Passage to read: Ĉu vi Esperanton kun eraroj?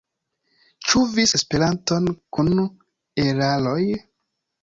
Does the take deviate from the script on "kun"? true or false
false